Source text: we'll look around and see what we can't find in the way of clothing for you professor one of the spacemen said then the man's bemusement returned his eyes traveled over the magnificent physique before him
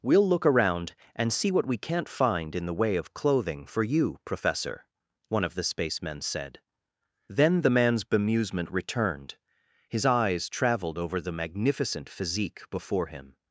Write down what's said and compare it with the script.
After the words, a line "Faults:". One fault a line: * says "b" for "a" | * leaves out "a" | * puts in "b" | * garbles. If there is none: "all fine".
we'll look around and see what we can't find in the way of clothing for you professor one of the spacemen said then the man's bemusement returned his eyes traveled over the magnificent physique before him
Faults:
all fine